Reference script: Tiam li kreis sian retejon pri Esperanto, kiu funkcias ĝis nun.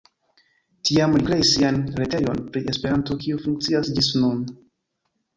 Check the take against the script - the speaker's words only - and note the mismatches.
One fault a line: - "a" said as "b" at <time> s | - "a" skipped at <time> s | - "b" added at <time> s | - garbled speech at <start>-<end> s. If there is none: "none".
none